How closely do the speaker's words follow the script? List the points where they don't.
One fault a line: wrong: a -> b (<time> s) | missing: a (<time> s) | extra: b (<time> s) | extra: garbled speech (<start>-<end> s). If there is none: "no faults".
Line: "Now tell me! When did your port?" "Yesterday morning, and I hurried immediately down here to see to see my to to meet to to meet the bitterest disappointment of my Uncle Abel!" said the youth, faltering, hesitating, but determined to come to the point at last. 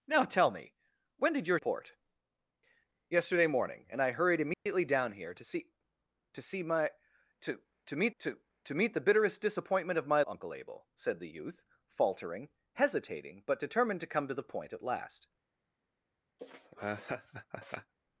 no faults